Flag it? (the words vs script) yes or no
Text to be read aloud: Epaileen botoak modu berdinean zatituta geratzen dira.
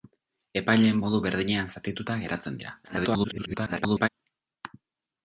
yes